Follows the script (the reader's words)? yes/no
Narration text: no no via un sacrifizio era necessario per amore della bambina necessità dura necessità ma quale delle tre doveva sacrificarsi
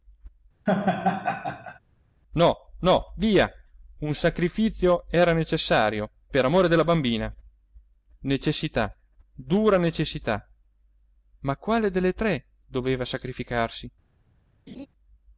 yes